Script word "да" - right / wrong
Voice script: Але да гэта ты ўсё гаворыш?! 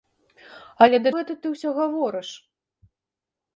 right